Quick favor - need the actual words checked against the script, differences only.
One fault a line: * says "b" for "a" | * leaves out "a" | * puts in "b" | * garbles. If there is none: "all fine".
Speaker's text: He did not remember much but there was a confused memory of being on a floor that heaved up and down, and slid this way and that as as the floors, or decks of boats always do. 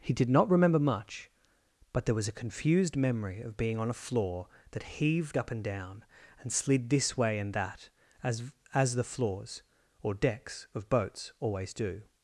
all fine